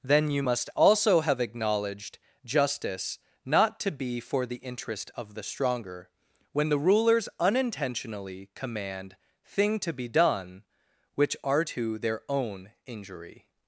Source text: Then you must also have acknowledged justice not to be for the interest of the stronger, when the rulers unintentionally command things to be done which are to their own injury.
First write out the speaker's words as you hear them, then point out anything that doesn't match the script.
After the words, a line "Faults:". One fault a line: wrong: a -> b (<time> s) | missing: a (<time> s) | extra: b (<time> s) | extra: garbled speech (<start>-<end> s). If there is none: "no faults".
Then you must also have acknowledged justice not to be for the interest of the stronger, when the rulers unintentionally command thing to be done which are to their own injury.
Faults:
wrong: things -> thing (9.4 s)